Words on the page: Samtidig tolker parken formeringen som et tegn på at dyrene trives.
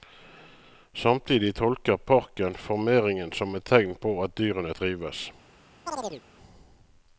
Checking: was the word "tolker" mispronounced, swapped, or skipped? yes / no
no